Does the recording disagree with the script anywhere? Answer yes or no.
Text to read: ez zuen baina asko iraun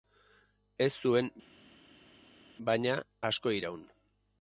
no